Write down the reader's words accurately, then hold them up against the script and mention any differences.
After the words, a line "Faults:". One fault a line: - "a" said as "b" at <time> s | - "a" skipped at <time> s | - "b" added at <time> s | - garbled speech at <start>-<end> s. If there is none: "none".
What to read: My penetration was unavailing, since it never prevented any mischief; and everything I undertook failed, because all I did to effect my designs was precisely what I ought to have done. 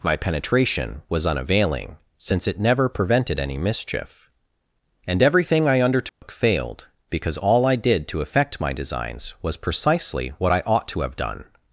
My penetration was unavailing, since it never prevented any mischief; and everything I undertook failed, because all I did to effect my designs was precisely what I ought to have done.
Faults:
none